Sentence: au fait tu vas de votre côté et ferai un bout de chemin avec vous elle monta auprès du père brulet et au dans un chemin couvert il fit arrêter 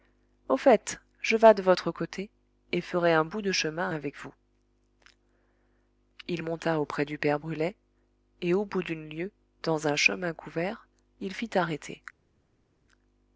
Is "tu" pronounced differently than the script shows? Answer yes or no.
yes